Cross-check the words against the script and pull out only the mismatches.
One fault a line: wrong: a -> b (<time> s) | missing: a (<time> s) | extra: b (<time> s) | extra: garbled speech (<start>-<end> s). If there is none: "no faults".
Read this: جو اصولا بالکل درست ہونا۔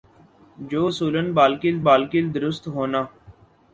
extra: بالکل (1.9 s)